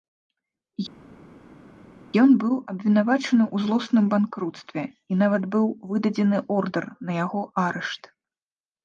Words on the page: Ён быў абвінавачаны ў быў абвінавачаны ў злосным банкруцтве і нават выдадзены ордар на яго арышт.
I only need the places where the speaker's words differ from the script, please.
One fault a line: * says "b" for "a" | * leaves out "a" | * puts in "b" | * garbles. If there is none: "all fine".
* leaves out "быў абвінавачаны ў"
* puts in "быў"